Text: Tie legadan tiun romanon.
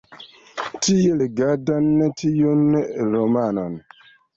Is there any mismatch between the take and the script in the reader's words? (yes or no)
no